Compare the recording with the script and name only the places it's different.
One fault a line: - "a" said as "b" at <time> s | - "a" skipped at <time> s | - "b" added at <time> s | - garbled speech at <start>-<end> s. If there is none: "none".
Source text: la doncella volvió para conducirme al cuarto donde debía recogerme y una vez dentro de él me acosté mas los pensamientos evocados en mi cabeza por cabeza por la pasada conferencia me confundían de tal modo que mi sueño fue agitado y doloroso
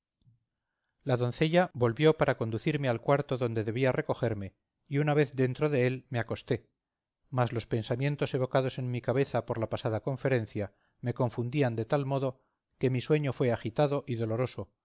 - "cabeza por" skipped at 9.6 s